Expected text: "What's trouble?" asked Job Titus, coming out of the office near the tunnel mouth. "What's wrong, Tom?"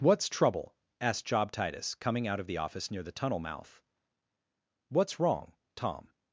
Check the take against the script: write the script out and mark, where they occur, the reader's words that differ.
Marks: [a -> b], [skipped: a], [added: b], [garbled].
"What's trouble?" asked Job Titus, coming out of the office near the tunnel mouth. "What's wrong, Tom?"